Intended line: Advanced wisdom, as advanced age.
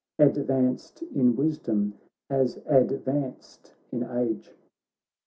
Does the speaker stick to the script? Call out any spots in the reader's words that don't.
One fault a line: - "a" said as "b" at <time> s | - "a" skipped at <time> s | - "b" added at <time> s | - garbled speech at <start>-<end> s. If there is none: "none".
- "in" added at 1.0 s
- "in" added at 3.9 s